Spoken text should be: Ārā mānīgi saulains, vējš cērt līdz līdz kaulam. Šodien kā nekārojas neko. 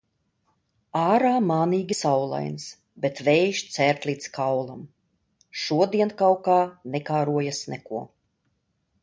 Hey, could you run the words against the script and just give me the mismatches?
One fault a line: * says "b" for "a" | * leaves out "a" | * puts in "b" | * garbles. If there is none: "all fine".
* puts in "bet"
* leaves out "līdz"
* puts in "kaut"